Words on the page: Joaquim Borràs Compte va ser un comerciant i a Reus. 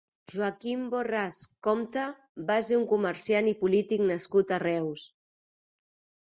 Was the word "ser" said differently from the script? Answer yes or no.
no